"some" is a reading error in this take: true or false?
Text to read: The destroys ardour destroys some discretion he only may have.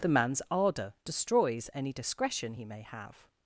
true